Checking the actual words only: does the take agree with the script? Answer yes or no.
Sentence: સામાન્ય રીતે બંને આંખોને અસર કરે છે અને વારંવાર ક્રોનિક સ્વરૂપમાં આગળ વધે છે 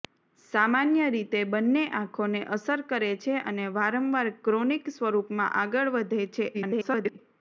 no